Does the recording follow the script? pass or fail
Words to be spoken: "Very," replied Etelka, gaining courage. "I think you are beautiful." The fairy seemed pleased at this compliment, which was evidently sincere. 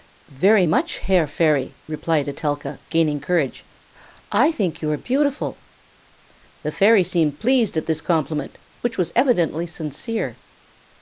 fail